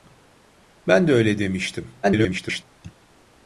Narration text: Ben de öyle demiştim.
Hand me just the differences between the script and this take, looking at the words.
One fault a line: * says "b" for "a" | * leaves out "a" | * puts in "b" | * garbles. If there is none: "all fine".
* garbles